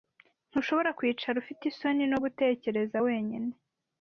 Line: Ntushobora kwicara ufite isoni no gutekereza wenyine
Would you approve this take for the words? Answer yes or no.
yes